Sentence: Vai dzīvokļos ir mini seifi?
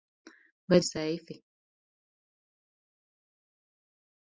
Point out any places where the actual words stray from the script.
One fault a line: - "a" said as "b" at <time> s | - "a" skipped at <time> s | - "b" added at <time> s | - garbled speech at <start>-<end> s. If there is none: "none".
- "dzīvokļos ir mini" skipped at 0.8 s